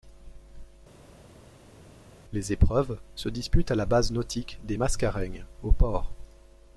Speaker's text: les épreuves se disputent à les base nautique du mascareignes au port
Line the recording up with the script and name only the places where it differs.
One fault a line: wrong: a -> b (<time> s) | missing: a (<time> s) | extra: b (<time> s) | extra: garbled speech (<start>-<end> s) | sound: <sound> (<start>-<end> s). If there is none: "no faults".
wrong: les -> la (3.7 s)
wrong: du -> des (4.6 s)